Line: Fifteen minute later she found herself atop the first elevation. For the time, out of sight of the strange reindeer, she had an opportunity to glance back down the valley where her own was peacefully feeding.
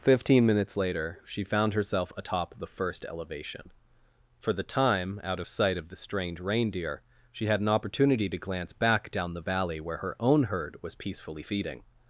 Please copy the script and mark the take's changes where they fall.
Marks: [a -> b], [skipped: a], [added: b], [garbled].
Fifteen [minute -> minutes] later she found herself atop the first elevation. For the time, out of sight of the strange reindeer, she had an opportunity to glance back down the valley where her own [added: herd] was peacefully feeding.